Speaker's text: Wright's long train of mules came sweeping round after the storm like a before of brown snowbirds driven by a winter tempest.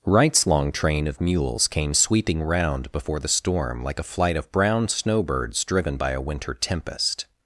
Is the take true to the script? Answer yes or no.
no